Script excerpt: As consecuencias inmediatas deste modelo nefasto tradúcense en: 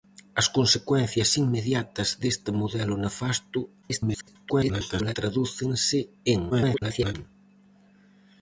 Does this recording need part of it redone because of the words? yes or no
yes